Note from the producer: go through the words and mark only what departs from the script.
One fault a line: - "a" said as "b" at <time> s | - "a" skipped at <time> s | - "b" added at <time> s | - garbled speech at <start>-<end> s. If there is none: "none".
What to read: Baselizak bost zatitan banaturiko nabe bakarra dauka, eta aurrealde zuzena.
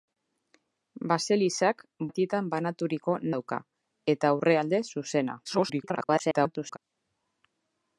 - "bost" skipped at 1.8 s
- "nabe bakarra" skipped at 3.2 s
- garbled speech at 5.4-6.8 s